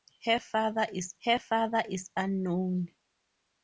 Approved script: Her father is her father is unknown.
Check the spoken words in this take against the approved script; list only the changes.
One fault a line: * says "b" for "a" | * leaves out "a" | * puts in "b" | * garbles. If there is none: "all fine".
all fine